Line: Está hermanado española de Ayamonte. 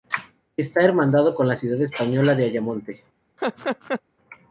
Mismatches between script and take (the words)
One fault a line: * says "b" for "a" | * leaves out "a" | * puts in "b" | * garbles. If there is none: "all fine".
* puts in "con la ciudad"